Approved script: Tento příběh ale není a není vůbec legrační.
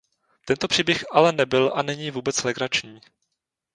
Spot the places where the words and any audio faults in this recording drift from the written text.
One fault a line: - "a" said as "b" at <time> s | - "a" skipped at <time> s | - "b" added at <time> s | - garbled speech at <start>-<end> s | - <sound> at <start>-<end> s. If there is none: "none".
- "není" said as "nebyl" at 1.3 s